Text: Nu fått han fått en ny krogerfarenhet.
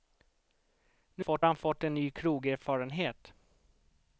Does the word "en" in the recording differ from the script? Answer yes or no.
no